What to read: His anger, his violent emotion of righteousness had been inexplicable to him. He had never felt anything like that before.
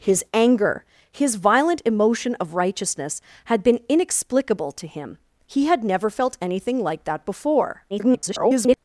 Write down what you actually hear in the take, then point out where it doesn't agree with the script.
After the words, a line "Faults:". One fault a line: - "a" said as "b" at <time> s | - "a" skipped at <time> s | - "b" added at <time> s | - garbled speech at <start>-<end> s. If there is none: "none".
His anger, his violent emotion of righteousness had been inexplicable to him. He had never felt anything like that before. [garbled]
Faults:
- garbled speech at 7.9-8.8 s